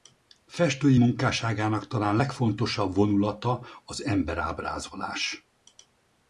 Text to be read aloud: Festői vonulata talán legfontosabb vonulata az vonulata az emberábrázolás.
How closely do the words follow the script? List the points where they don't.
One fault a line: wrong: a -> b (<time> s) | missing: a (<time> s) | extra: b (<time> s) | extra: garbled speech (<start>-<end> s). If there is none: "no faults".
wrong: vonulata -> munkásságának (1.0 s)
missing: vonulata az (4.0 s)